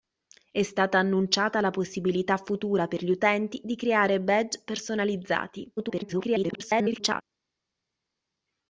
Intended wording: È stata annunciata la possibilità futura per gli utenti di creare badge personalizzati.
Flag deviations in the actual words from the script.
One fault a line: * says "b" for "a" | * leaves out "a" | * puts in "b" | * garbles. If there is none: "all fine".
* garbles